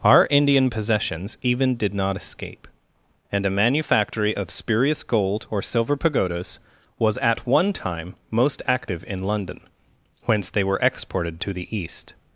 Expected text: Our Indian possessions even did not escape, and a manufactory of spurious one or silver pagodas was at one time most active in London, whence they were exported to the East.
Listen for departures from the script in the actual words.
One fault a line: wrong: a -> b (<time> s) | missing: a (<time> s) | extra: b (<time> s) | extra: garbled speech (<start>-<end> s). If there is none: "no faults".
wrong: one -> gold (5.0 s)